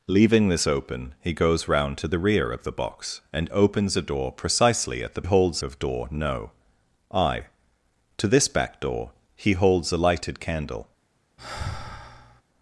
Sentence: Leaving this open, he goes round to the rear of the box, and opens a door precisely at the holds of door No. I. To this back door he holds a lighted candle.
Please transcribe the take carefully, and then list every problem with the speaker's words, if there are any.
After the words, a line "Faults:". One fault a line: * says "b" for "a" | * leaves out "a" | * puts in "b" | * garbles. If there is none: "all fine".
Leaving this open, he goes round to the rear of the box, and opens a door precisely at the holds of door No. I. To this back door he holds a lighted candle.
Faults:
all fine